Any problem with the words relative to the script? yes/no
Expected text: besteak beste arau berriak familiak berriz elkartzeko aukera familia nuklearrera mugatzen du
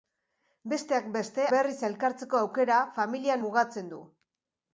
yes